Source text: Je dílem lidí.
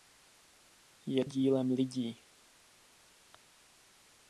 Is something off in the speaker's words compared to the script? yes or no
no